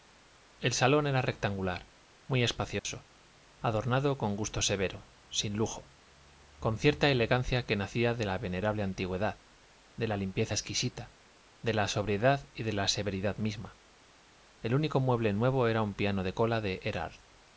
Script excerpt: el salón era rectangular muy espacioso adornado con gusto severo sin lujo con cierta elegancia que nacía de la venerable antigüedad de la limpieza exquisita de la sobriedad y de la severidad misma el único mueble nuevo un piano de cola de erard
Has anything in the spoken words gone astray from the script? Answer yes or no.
yes